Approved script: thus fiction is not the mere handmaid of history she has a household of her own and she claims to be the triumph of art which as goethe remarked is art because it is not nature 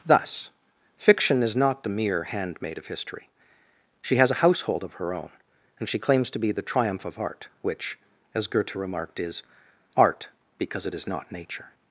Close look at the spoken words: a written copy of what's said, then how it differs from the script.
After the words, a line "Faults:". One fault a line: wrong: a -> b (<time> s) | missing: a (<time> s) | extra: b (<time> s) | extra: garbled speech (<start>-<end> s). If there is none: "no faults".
thus fiction is not the mere handmaid of history she has a household of her own and she claims to be the triumph of art which as goethe remarked is art because it is not nature
Faults:
no faults